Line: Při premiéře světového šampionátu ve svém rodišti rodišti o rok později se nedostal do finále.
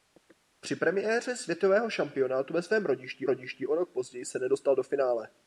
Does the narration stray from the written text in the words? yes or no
no